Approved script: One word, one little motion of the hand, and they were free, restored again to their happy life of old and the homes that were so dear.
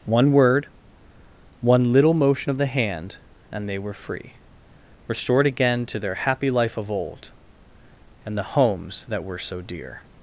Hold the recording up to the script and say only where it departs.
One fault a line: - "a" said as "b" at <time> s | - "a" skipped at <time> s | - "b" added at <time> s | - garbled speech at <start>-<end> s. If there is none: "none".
none